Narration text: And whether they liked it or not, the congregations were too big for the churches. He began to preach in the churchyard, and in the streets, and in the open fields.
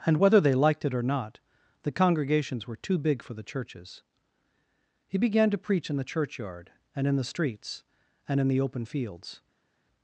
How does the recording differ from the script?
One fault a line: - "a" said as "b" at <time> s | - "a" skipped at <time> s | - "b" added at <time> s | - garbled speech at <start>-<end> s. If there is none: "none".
none